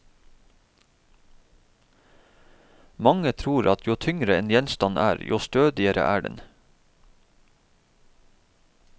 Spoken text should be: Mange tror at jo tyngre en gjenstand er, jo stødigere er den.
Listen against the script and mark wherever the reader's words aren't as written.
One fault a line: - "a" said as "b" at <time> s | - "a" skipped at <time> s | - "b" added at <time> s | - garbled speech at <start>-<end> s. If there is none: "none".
none